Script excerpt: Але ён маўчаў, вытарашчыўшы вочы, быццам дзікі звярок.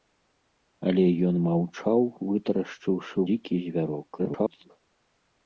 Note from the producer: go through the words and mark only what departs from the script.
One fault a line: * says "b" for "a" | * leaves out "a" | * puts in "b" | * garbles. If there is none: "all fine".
* leaves out "вочы быццам"
* garbles